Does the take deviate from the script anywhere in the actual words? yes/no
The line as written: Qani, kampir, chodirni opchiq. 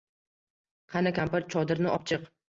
no